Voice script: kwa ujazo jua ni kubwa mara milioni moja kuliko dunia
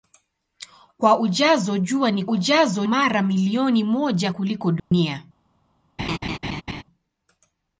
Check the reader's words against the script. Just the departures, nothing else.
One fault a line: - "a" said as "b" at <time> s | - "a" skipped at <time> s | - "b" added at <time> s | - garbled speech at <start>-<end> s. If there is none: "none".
- "kubwa" said as "ujazo" at 2.3 s